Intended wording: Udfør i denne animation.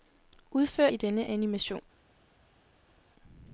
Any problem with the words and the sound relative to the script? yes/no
no